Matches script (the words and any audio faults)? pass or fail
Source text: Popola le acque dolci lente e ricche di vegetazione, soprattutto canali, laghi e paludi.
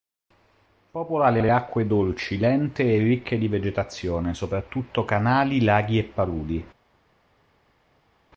fail